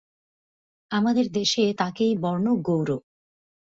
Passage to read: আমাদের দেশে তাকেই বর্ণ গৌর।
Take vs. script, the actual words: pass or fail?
pass